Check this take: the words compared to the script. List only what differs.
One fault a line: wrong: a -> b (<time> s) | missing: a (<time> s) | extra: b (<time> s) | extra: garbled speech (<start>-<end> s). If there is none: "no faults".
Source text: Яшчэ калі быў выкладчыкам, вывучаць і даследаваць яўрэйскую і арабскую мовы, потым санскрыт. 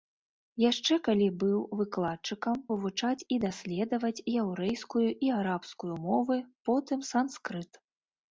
no faults